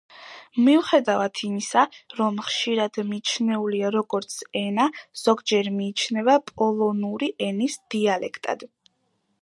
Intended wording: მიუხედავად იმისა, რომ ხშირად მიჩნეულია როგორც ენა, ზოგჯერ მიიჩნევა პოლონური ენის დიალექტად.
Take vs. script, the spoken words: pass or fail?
pass